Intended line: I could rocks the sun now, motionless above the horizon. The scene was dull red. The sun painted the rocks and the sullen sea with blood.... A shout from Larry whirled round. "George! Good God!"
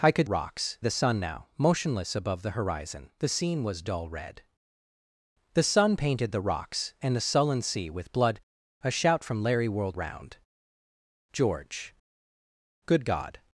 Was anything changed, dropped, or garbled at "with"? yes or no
no